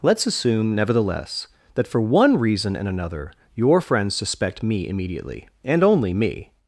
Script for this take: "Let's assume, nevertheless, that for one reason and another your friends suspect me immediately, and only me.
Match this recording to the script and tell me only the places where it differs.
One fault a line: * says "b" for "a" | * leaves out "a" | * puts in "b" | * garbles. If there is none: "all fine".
all fine